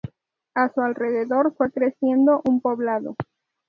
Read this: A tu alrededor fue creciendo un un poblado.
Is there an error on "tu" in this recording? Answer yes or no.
yes